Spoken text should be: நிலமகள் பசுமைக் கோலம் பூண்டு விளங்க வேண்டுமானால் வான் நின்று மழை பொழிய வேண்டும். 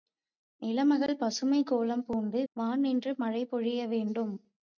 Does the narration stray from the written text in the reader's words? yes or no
yes